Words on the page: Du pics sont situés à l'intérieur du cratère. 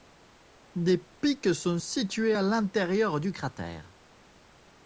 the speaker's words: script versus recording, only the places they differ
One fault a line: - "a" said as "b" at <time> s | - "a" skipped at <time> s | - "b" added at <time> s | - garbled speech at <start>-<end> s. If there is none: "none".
- "Du" said as "Des" at 0.7 s